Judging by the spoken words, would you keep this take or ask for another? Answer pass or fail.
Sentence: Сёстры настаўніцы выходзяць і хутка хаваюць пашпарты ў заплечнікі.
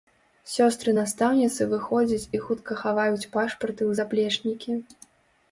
pass